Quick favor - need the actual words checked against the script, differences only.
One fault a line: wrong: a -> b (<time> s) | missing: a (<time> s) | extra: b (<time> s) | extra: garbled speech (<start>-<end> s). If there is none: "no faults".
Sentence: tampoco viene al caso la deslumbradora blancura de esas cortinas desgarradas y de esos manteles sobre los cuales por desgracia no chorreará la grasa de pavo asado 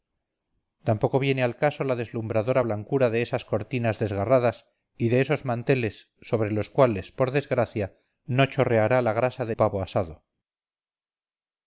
no faults